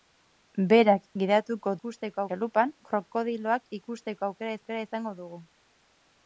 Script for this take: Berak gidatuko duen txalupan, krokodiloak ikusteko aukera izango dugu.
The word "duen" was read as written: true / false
false